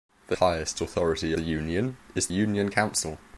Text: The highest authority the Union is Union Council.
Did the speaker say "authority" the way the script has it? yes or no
yes